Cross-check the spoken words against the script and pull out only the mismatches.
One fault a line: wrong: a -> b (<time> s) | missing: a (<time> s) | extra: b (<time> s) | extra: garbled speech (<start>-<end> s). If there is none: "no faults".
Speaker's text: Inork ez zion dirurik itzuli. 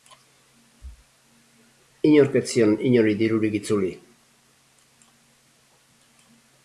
extra: inori (2.9 s)